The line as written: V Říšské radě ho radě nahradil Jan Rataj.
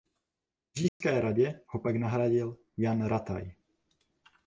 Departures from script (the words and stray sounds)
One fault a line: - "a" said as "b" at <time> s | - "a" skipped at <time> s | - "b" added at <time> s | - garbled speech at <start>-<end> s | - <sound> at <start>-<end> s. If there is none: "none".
- dropout at 0.9-1.0 s
- "radě" said as "pak" at 1.8 s